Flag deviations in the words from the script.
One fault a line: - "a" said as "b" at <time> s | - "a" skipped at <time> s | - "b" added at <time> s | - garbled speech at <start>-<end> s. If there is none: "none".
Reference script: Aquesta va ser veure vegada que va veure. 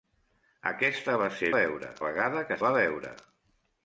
none